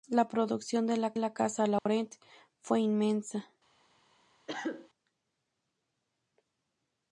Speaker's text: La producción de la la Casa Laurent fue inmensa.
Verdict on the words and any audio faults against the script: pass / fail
fail